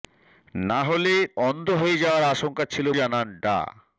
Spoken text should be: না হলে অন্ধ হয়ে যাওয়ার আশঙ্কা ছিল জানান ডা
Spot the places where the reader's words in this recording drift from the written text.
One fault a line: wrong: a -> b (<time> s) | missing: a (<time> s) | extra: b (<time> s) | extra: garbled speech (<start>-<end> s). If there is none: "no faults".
no faults